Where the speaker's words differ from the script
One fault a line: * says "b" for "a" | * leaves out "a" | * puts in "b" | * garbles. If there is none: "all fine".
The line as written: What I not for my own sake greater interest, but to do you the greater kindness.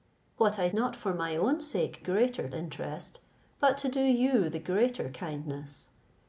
all fine